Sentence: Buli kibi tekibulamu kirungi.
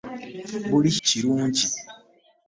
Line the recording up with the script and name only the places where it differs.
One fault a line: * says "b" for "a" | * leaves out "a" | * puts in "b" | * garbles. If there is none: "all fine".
* leaves out "kibi tekibulamu"